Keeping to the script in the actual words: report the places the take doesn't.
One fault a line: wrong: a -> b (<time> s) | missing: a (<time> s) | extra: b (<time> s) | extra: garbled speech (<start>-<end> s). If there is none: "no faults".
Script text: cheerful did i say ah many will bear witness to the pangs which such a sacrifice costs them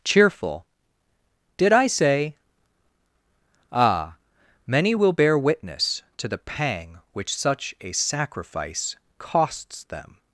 wrong: pangs -> pang (6.4 s)